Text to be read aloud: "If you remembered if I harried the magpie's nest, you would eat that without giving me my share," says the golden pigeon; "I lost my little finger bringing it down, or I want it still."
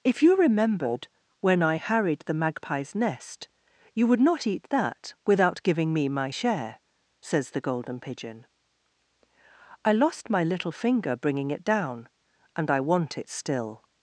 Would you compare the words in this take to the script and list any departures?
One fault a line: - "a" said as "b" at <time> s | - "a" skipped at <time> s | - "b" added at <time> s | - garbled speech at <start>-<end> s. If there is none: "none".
- "if" said as "when" at 1.4 s
- "not" added at 4.2 s
- "or" said as "and" at 12.6 s